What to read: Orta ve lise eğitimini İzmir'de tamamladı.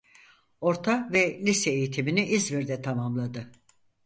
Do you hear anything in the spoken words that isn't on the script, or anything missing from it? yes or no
no